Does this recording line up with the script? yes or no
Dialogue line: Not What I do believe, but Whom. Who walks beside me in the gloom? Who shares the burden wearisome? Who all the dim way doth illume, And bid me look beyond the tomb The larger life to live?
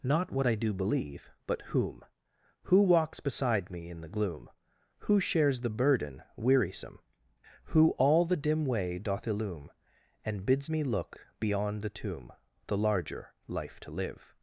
no